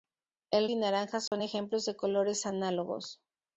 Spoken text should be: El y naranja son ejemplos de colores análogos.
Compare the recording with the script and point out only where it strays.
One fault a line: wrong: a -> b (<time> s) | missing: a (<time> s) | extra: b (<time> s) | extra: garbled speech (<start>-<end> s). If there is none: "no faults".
no faults